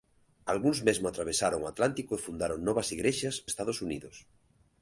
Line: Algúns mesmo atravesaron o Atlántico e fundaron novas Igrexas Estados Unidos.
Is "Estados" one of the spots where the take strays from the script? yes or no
no